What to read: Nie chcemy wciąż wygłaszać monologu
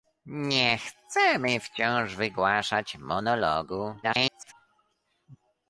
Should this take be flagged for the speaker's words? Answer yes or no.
yes